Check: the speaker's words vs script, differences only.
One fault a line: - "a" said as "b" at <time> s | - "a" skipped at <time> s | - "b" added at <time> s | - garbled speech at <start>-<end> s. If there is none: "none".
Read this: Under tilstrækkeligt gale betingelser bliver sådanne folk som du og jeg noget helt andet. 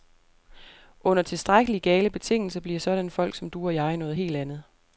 none